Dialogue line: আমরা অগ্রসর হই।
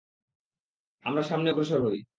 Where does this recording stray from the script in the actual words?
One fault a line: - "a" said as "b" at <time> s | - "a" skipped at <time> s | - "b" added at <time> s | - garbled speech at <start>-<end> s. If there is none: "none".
- "সামনে" added at 1.2 s